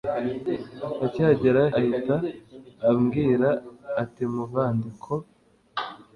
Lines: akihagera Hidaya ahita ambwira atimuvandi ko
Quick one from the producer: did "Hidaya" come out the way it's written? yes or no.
no